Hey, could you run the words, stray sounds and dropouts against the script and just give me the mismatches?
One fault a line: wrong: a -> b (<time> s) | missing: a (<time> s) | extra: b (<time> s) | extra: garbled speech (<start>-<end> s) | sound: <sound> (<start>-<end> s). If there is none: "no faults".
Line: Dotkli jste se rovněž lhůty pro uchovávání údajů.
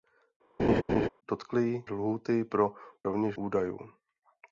sound: laugh (0.6-1.1 s)
missing: jste se rovněž (1.8 s)
wrong: uchovávání -> rovněž (3.0 s)